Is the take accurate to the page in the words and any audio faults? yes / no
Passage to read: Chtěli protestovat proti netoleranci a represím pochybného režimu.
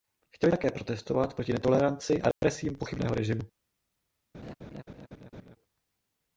no